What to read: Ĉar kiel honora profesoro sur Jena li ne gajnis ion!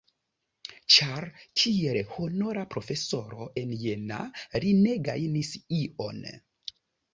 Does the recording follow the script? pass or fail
fail